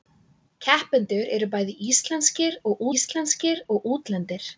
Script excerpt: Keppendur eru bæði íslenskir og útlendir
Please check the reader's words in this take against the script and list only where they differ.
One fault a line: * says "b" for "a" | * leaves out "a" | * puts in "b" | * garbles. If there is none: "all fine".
* puts in "íslenskir og"